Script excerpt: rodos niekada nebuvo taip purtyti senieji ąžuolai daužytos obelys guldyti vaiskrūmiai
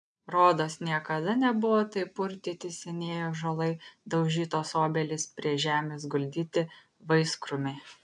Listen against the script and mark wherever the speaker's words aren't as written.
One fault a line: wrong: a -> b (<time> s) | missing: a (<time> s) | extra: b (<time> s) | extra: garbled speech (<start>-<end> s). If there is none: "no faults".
extra: prie žemės (5.4 s)